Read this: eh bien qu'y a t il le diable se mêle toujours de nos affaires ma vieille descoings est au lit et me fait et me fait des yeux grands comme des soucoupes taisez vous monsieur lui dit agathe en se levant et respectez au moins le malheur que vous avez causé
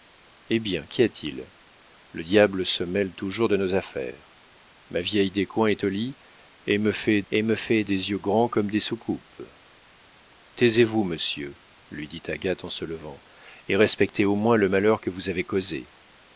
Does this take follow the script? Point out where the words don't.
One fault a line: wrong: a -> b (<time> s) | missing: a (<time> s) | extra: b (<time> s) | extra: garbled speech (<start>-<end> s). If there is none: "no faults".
no faults